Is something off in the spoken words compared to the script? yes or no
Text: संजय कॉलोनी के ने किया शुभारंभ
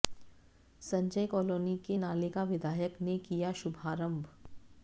yes